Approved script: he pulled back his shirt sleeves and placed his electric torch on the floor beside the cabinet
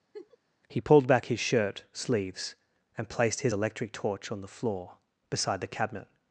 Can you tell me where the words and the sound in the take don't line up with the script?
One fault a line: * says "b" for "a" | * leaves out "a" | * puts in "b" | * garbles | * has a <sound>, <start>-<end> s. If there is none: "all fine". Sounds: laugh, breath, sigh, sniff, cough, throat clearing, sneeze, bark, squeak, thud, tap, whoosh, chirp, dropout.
* has a laugh, 0.1-0.4 s